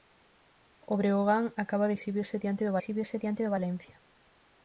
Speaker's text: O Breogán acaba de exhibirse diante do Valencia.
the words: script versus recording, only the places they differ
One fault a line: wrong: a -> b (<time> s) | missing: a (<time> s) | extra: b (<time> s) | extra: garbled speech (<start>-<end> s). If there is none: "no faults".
extra: exhibirse diante do (2.8 s)